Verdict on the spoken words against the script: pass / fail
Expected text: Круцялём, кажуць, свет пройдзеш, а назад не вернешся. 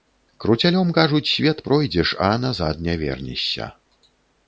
pass